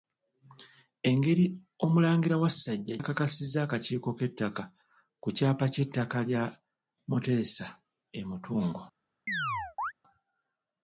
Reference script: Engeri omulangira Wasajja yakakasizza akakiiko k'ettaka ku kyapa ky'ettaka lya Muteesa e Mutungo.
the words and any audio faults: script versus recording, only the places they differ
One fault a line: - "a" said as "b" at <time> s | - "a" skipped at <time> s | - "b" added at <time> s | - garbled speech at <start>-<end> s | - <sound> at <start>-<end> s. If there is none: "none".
- chirp at 9.3-9.9 s